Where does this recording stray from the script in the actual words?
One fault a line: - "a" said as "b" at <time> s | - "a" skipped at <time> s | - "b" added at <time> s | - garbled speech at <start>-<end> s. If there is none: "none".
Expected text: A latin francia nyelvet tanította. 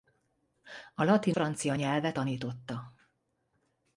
none